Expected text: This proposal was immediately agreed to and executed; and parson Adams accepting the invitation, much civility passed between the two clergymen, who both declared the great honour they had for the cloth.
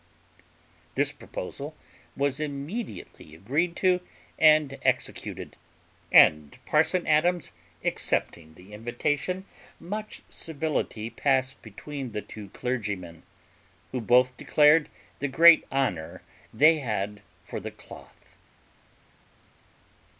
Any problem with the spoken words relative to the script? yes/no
no